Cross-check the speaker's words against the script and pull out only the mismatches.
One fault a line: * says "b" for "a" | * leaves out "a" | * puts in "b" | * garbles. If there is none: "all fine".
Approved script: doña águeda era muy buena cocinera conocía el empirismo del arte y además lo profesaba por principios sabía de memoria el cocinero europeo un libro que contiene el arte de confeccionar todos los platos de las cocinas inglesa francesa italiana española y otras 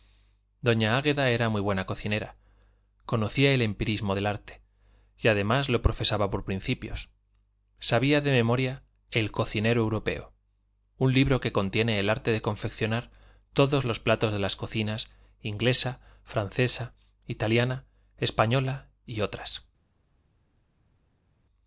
all fine